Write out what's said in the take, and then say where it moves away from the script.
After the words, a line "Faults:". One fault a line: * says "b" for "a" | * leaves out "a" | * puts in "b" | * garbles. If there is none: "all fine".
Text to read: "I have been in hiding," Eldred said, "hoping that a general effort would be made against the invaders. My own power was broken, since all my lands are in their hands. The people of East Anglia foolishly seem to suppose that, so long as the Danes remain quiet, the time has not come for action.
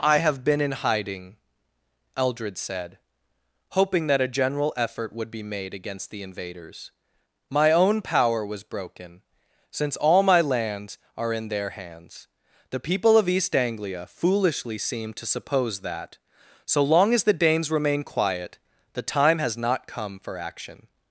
"I have been in hiding," Eldred said, "hoping that a general effort would be made against the invaders. My own power was broken, since all my lands are in their hands. The people of East Anglia foolishly seem to suppose that, so long as the Danes remain quiet, the time has not come for action.
Faults:
all fine